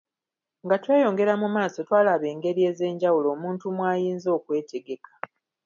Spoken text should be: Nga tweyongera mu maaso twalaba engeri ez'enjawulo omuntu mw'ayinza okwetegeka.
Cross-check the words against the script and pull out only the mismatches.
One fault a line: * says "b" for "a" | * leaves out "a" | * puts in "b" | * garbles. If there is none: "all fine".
all fine